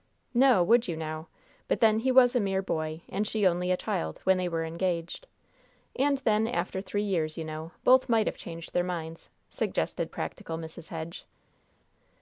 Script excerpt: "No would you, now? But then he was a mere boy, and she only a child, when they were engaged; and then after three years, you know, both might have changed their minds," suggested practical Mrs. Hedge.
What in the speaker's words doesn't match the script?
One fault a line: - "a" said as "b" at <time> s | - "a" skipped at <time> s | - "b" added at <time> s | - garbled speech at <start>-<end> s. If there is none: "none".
none